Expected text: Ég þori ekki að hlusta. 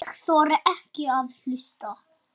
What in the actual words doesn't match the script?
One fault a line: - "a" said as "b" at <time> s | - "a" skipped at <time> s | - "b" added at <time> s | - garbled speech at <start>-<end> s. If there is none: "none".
none